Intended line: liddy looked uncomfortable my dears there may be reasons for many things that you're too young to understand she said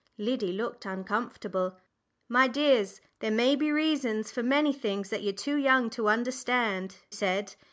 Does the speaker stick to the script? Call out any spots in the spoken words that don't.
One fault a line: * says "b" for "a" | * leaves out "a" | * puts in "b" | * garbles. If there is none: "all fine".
* leaves out "she"